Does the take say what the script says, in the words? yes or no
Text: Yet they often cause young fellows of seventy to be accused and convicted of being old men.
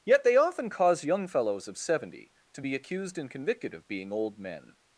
yes